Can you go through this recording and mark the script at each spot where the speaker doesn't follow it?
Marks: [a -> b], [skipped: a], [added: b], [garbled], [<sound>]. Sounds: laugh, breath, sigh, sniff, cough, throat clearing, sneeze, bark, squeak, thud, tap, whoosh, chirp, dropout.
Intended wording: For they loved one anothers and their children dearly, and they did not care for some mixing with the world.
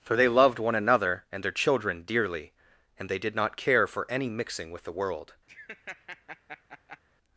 For they loved one [anothers -> another] and their children dearly, and they did not care for [some -> any] mixing with the world. [laugh]